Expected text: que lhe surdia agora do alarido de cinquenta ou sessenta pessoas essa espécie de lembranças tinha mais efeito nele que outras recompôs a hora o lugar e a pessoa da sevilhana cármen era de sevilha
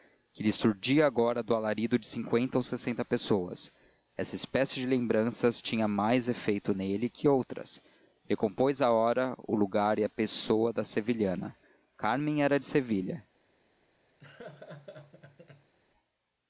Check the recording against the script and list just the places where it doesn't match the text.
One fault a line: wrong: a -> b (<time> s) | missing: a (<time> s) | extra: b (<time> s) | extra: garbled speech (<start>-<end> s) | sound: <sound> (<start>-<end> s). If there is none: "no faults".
sound: laugh (14.2-15.7 s)